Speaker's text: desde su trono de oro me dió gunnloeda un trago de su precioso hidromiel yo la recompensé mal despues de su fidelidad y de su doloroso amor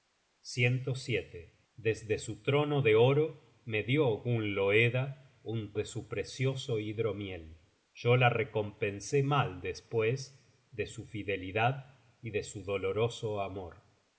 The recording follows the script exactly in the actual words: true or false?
false